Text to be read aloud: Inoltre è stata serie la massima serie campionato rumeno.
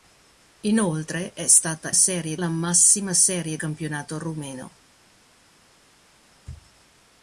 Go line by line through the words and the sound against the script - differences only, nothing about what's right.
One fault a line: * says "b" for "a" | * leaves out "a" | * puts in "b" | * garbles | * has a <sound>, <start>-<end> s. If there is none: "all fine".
all fine